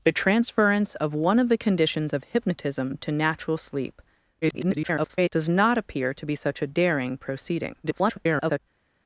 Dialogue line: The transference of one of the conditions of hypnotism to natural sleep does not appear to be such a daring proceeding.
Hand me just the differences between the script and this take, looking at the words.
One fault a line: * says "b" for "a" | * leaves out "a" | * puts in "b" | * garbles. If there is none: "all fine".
* garbles
* garbles